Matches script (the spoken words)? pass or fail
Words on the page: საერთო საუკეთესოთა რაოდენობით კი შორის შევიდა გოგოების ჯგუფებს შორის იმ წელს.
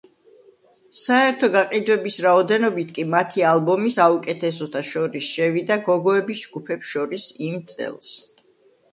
fail